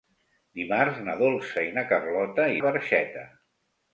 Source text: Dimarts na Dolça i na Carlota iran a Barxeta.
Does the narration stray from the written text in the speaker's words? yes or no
yes